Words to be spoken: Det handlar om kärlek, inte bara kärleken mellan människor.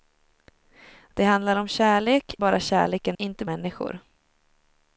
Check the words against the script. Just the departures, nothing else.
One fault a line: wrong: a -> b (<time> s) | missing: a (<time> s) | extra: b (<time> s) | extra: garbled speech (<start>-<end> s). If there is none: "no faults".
missing: inte (2.4 s)
wrong: mellan -> inte (3.2 s)